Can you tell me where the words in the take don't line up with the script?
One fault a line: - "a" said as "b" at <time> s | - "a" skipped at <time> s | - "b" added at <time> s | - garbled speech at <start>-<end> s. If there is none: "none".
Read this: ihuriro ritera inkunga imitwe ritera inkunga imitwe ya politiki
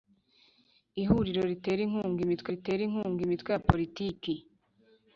none